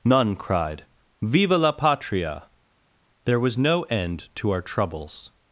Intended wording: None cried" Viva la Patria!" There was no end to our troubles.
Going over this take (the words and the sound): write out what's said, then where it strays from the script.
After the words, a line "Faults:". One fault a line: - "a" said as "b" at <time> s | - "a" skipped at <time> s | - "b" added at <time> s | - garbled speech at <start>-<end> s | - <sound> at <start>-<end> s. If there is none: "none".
None cried" Viva la Patria!" There was no end to our troubles.
Faults:
none